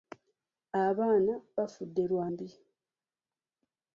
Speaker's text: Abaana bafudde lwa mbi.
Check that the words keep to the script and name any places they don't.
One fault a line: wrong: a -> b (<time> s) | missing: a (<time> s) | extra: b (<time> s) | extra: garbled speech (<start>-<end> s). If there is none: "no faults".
no faults